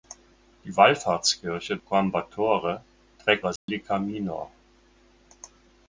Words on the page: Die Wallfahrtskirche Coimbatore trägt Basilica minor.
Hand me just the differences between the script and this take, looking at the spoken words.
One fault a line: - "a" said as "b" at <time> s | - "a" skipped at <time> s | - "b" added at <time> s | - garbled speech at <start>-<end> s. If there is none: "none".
none